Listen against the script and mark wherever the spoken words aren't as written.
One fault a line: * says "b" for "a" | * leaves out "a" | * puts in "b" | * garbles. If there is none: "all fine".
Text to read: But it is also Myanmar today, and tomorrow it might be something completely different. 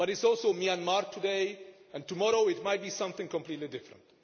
all fine